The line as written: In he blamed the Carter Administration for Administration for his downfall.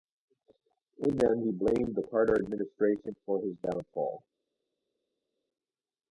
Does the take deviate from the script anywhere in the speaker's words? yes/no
yes